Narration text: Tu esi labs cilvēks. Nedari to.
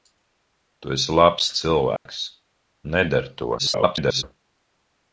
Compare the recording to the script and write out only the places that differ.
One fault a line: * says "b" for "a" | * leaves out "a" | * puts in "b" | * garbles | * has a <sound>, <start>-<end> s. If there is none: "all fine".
* has a dropout, 2.0-2.1 s
* garbles